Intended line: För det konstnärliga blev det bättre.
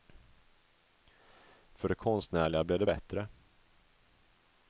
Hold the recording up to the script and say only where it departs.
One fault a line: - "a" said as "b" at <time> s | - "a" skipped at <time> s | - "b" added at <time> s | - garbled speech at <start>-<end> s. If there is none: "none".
none